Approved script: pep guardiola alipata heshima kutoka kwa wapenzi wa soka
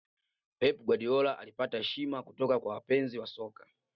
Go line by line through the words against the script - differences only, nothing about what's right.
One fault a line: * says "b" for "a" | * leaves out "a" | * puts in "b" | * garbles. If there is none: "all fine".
all fine